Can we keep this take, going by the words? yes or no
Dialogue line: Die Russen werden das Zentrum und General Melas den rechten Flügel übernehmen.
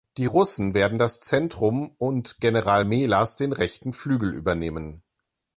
yes